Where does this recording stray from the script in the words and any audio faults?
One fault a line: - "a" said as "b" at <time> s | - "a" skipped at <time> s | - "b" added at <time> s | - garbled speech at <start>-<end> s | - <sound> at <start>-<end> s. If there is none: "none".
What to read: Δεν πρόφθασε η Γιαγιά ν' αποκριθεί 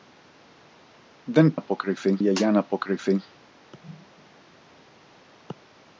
- "πρόφθασε" said as "αποκριθεί" at 1.5 s